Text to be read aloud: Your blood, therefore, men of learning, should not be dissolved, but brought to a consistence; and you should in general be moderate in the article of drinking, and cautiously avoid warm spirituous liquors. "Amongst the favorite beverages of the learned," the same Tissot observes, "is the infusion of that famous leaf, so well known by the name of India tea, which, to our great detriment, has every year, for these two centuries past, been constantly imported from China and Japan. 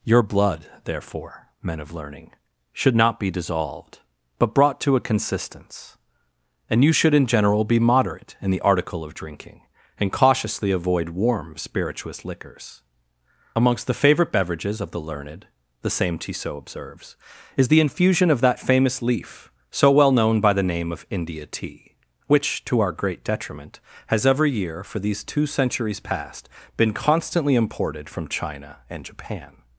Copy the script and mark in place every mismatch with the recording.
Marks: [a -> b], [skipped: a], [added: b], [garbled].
Your blood, therefore, men of learning, should not be dissolved, but brought to a consistence; and you should in general be moderate in the article of drinking, and cautiously avoid warm spirituous liquors. "Amongst the favorite beverages of the learned," the same Tissot observes, "is the infusion of that famous leaf, so well known by the name of India tea, which, to our great detriment, has every year, for these two centuries past, been constantly imported from China and Japan.